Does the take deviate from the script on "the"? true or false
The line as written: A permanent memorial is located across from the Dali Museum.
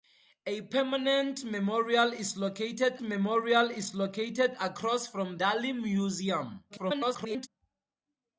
true